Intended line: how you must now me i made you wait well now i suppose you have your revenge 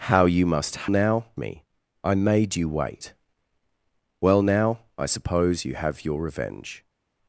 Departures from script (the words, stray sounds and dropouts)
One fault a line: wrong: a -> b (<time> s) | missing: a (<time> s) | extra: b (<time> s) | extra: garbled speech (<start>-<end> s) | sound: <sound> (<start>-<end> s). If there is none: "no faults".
no faults